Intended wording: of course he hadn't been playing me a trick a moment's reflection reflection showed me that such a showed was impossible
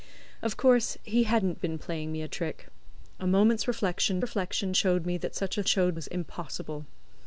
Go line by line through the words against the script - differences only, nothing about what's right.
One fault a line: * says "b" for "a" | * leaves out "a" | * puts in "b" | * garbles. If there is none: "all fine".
all fine